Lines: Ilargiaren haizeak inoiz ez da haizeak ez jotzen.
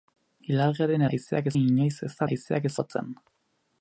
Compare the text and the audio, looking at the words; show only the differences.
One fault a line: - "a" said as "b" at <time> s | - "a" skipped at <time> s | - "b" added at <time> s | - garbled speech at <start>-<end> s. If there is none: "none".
none